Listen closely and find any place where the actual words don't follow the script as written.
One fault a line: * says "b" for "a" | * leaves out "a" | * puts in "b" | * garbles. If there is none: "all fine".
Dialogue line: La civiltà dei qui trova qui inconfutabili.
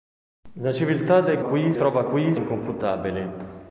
all fine